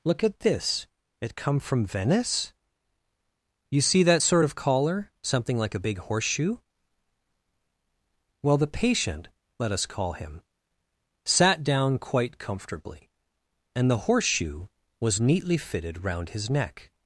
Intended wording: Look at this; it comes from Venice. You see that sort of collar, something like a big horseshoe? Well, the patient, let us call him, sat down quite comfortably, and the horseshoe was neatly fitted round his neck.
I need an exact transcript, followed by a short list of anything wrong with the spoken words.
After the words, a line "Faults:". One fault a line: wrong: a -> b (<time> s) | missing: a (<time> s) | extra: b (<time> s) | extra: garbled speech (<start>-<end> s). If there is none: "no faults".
Look at this; it come from Venice. You see that sort of collar, something like a big horseshoe? Well, the patient, let us call him, sat down quite comfortably, and the horseshoe was neatly fitted round his neck.
Faults:
wrong: comes -> come (1.4 s)